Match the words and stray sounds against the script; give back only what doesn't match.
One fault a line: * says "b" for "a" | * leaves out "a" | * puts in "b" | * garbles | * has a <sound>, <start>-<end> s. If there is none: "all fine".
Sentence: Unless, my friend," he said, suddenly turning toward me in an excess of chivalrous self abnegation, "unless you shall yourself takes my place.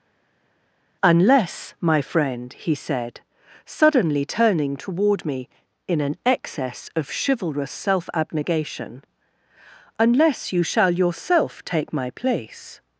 * says "take" for "takes"